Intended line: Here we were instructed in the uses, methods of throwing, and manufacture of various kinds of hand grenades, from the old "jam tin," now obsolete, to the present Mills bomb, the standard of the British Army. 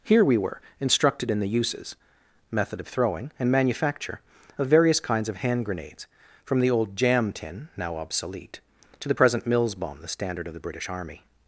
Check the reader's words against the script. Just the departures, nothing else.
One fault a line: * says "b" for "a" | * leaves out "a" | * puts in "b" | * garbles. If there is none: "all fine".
* says "method" for "methods"